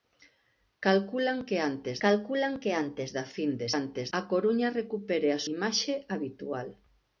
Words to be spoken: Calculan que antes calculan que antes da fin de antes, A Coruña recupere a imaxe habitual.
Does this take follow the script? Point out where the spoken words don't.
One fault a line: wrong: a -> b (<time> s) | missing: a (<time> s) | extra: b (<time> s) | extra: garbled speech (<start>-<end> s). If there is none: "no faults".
no faults